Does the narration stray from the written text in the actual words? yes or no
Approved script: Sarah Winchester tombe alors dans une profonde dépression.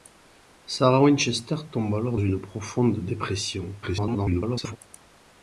yes